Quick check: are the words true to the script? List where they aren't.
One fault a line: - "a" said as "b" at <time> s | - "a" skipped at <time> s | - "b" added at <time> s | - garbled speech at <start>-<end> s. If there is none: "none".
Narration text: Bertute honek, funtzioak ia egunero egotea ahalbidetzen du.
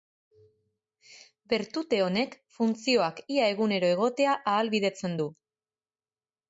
none